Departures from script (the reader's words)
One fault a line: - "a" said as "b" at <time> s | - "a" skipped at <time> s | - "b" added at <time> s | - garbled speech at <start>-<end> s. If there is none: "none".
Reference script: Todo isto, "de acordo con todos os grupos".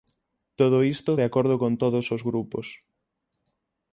none